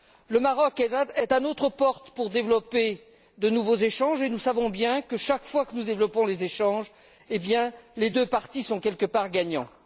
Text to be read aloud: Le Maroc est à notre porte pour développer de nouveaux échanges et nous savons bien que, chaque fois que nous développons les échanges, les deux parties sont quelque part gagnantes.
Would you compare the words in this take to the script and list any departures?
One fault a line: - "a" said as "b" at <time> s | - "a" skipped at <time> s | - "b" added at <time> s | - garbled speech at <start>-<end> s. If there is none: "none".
none